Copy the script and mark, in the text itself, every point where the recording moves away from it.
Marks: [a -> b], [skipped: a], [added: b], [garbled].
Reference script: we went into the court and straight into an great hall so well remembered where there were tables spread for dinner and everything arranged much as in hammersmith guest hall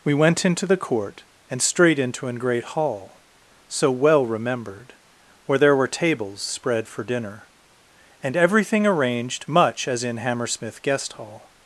we went into the court and straight into an great hall so well remembered where there were tables spread for dinner and everything arranged much as in hammersmith guest hall